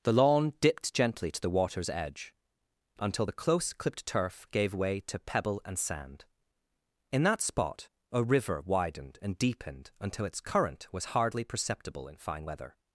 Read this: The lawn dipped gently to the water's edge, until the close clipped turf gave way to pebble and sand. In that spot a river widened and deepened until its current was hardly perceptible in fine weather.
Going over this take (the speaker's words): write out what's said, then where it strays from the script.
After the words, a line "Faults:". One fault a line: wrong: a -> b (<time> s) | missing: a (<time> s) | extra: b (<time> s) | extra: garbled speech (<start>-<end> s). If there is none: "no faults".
The lawn dipped gently to the water's edge, until the close clipped turf gave way to pebble and sand. In that spot a river widened and deepened until its current was hardly perceptible in fine weather.
Faults:
no faults